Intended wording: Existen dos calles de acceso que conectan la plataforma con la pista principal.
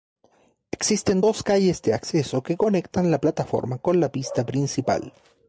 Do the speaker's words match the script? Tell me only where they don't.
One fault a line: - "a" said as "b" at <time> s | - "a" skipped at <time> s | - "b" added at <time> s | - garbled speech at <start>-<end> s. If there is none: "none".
none